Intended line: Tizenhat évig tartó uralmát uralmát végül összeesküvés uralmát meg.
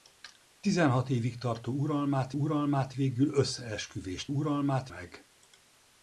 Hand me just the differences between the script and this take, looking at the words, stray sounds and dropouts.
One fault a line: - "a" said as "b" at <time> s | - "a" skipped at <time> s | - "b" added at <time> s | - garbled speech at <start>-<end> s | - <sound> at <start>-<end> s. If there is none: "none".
none